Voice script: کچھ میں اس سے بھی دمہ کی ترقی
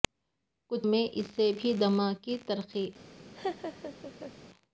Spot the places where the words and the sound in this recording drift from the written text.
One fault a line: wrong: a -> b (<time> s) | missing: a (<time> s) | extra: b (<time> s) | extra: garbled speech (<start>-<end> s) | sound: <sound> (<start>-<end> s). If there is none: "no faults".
sound: laugh (3.4-4.3 s)